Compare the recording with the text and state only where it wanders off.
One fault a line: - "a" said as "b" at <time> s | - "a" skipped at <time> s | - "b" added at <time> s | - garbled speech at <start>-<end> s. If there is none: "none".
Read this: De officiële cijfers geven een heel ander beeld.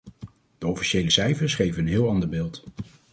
none